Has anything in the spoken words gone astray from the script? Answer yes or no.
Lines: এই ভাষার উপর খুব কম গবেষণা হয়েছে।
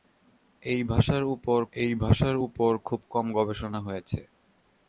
yes